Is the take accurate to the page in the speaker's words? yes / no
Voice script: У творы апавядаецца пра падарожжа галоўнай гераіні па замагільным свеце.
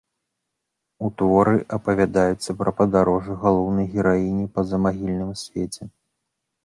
yes